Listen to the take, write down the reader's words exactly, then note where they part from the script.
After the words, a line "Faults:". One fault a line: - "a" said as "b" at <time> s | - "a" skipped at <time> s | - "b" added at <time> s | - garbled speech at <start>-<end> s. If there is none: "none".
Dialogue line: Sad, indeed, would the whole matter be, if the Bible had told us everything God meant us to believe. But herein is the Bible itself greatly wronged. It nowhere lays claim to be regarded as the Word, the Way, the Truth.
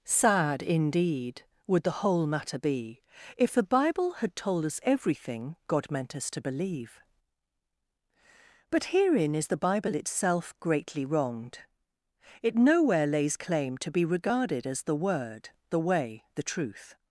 Sad, indeed, would the whole matter be, if the Bible had told us everything God meant us to believe. But herein is the Bible itself greatly wronged. It nowhere lays claim to be regarded as the Word, the Way, the Truth.
Faults:
none